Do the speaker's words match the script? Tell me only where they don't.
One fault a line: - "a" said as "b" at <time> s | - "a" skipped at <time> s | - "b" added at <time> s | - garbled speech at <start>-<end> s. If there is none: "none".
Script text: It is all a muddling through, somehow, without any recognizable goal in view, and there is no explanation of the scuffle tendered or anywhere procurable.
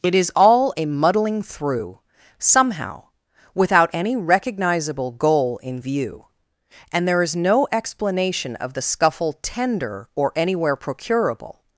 - "tendered" said as "tender" at 9.4 s